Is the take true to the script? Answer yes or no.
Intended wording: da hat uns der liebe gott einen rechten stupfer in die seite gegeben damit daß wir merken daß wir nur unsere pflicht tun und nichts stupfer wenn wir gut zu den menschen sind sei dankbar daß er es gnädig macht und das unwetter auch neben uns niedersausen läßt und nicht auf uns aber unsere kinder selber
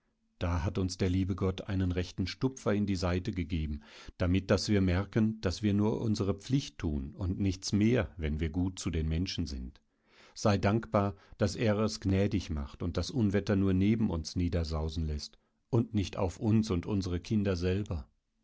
no